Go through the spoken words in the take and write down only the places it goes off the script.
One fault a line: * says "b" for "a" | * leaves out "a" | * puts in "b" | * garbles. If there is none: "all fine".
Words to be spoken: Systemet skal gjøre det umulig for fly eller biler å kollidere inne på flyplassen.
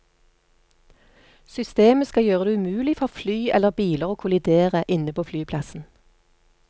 all fine